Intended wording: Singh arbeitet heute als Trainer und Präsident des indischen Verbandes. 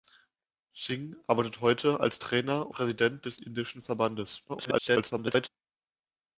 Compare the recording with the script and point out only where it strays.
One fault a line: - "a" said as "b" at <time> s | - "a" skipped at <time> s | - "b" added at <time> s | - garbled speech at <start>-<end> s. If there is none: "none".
- "und" skipped at 2.7 s
- garbled speech at 4.5-5.5 s